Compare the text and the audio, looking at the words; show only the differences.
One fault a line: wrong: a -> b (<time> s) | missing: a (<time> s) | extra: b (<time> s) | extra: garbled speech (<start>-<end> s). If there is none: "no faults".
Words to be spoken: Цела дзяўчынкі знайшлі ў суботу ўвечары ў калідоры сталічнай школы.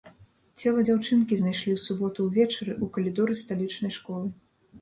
no faults